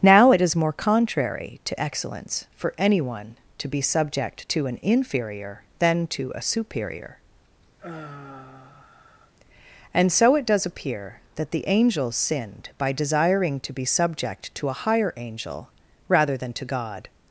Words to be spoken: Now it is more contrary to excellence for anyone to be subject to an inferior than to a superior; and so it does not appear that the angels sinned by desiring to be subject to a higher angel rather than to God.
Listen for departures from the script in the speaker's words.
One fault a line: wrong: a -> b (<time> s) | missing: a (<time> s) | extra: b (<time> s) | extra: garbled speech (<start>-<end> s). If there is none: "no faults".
missing: not (10.7 s)